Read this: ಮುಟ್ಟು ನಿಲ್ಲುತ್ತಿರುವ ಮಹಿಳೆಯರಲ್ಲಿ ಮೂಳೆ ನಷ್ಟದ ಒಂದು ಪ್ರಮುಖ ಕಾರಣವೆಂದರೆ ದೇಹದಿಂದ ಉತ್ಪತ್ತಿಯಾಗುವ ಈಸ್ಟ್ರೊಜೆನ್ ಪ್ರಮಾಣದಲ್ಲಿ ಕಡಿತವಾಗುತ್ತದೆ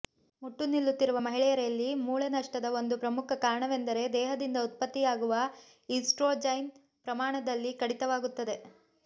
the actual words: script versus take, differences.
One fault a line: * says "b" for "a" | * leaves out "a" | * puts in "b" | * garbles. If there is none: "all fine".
all fine